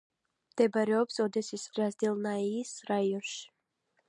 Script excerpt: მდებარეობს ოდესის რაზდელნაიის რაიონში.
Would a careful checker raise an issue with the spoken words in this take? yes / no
no